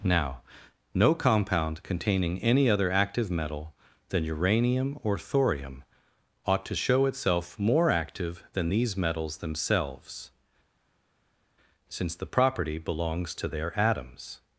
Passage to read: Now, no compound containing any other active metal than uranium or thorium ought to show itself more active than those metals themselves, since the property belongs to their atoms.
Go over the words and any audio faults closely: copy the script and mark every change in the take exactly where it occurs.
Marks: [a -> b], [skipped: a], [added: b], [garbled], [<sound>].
Now, no compound containing any other active metal than uranium or thorium ought to show itself more active than [those -> these] metals themselves, since the property belongs to their atoms.